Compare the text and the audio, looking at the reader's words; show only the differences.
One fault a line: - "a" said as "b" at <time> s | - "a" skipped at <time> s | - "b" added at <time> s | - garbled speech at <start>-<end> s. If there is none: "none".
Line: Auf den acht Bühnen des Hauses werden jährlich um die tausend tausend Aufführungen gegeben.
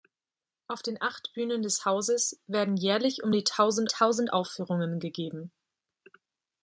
none